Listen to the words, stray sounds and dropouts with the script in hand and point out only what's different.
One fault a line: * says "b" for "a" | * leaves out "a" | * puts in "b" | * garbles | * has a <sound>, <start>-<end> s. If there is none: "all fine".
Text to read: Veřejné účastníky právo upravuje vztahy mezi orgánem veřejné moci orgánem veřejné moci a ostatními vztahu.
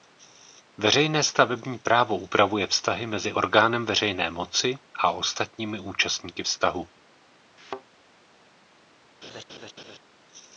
* says "stavební" for "účastníky"
* leaves out "orgánem veřejné moci"
* puts in "účastníky"
* has a thud, 7.6-7.8 s
* has a laugh, 9.2-10.0 s